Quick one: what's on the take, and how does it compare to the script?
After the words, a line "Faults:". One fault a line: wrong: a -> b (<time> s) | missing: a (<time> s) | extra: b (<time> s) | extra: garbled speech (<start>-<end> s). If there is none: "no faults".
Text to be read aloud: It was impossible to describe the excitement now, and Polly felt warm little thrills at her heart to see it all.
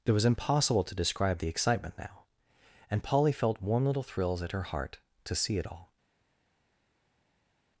It was impossible to describe the excitement now, and Polly felt warm little thrills at her heart to see it all.
Faults:
no faults